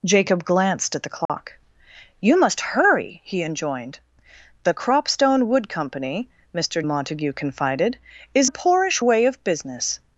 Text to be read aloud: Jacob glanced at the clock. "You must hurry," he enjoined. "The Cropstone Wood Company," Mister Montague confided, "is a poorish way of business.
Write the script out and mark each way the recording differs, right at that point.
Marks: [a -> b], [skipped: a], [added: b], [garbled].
Jacob glanced at the clock. "You must hurry," he enjoined. "The Cropstone Wood Company," Mister Montague confided, "is a poorish way of business.